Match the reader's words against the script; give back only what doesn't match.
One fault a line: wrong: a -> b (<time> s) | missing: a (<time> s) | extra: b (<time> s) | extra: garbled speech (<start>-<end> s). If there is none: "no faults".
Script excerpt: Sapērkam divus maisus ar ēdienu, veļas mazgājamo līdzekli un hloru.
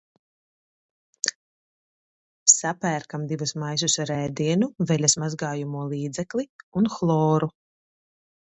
no faults